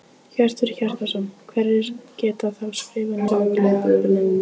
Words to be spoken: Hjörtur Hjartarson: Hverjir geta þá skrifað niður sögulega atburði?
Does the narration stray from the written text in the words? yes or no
yes